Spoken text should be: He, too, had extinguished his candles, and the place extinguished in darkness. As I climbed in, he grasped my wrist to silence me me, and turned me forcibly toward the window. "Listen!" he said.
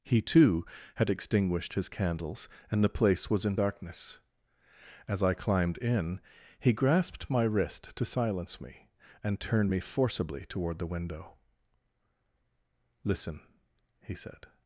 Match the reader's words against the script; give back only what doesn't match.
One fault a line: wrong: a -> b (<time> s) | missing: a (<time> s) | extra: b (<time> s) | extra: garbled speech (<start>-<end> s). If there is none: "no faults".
wrong: extinguished -> was (3.3 s)
missing: me (8.9 s)